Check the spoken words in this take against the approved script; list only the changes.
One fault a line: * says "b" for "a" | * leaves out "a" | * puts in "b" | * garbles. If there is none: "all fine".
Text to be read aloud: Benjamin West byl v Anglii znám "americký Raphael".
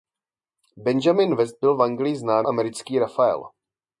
all fine